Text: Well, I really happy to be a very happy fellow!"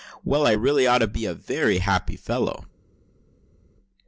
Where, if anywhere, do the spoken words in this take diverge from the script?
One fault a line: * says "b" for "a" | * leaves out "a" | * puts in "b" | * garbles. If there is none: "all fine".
* says "ought" for "happy"